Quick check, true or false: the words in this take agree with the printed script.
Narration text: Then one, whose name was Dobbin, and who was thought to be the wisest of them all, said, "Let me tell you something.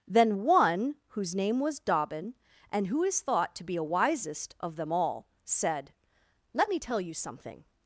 false